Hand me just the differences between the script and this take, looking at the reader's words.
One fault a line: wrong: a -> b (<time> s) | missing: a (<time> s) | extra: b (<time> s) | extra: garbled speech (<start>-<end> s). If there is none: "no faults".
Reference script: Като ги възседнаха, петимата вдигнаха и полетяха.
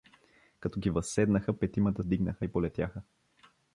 no faults